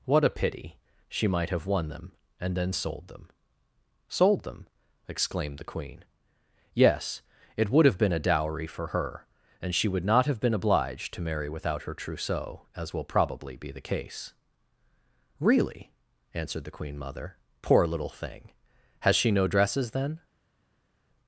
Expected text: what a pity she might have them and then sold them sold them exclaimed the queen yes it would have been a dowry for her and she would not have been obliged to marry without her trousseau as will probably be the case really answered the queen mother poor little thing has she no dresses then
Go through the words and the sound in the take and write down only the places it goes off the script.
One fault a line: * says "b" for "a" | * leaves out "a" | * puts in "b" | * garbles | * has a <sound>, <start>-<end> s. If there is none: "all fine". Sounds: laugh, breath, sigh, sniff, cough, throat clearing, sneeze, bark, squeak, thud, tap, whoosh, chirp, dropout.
* puts in "won"